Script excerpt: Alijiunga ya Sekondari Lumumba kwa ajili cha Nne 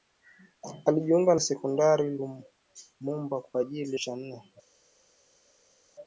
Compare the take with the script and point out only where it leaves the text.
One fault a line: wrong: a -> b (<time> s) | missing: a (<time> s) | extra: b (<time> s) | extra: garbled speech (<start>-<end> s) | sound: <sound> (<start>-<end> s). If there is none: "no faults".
no faults